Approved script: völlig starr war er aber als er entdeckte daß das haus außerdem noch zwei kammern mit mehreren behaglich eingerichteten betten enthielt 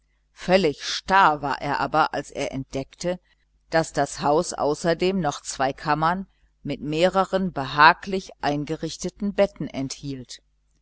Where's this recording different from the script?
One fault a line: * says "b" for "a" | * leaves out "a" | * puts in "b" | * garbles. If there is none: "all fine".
all fine